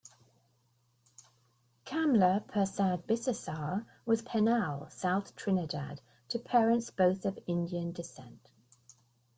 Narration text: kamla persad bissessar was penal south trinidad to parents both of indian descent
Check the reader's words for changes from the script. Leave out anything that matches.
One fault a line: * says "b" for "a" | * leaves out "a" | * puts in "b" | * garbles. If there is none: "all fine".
all fine